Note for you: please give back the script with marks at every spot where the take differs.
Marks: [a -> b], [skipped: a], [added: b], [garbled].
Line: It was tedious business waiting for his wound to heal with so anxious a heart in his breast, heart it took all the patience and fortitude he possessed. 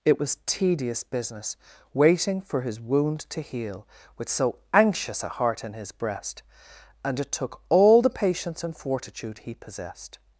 It was tedious business waiting for his wound to heal with so anxious a heart in his breast, [heart -> and] it took all the patience and fortitude he possessed.